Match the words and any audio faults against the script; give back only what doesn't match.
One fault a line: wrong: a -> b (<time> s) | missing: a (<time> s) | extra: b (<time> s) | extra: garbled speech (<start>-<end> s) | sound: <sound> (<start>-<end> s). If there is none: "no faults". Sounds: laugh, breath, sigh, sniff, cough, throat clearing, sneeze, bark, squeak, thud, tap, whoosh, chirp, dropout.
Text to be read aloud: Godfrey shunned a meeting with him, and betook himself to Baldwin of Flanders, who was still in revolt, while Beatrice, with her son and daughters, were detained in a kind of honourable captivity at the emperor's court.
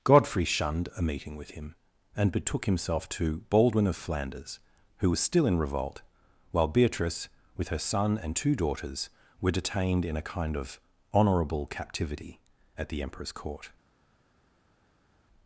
extra: two (8.4 s)